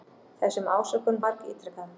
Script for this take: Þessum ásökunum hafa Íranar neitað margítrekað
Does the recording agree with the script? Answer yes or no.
no